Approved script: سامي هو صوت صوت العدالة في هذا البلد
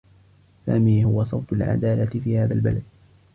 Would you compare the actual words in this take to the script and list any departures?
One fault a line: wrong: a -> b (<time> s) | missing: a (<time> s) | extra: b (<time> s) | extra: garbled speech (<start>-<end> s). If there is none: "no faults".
missing: صوت (1.5 s)